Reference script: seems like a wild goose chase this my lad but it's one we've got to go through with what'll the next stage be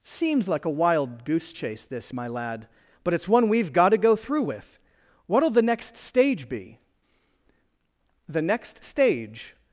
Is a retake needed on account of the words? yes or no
yes